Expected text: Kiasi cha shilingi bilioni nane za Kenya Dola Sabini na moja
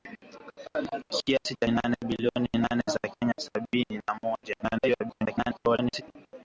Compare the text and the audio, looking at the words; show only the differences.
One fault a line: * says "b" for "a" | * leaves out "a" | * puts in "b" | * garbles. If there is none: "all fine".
* says "nane" for "shilingi"
* leaves out "Dola"
* garbles